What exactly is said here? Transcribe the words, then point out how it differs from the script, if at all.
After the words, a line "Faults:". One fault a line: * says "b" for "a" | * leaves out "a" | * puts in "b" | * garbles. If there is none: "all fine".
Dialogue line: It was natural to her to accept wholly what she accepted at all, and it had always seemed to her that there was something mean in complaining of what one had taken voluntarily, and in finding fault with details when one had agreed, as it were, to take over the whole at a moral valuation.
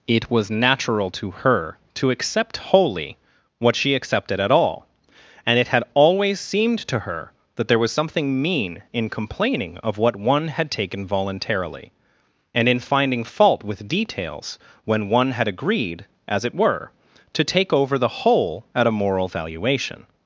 It was natural to her to accept wholly what she accepted at all, and it had always seemed to her that there was something mean in complaining of what one had taken voluntarily, and in finding fault with details when one had agreed, as it were, to take over the whole at a moral valuation.
Faults:
all fine